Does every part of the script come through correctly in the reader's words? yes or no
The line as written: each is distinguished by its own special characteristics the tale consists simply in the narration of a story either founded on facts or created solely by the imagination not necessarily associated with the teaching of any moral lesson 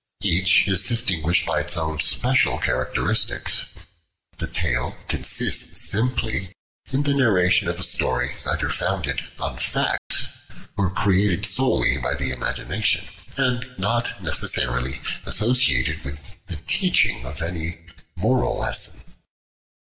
no